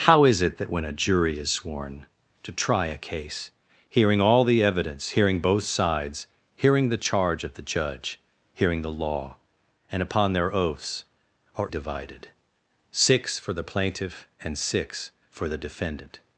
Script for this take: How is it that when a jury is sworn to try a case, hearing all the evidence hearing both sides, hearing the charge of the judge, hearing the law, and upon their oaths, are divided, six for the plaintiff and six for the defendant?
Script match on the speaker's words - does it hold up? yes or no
yes